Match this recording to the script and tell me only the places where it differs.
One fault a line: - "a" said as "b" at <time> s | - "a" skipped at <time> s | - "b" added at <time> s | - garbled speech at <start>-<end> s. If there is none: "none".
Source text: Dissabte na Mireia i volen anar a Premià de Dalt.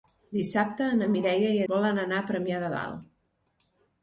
none